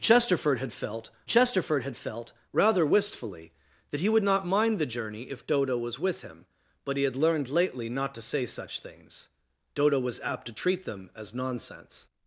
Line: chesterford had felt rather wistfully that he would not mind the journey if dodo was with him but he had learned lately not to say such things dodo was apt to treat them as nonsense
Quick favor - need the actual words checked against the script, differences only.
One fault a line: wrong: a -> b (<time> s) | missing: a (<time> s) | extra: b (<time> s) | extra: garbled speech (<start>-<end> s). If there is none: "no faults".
extra: chesterford had felt (1.3 s)